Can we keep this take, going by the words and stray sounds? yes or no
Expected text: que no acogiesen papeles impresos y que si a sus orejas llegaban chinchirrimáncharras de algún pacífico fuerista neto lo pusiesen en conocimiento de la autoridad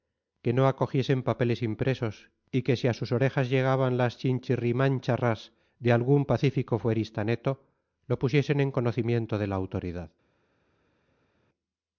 no